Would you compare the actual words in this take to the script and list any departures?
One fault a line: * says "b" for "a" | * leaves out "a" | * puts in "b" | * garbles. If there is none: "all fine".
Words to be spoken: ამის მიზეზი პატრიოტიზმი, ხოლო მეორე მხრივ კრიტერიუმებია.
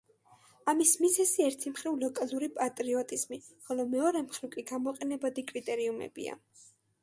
* puts in "ერთი მხრივ ლოკალური"
* puts in "კი გამოყენებადი"